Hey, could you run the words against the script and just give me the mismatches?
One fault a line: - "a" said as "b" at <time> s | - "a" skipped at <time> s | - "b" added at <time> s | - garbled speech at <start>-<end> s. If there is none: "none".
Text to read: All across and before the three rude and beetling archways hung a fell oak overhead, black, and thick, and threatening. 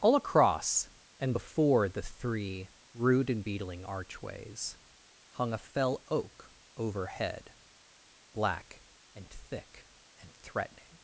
none